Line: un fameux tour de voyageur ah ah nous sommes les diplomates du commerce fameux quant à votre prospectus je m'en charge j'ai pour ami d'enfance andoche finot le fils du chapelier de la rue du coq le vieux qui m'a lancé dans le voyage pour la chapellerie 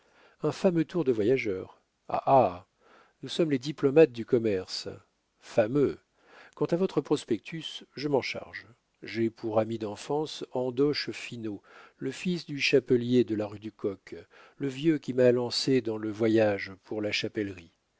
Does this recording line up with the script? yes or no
yes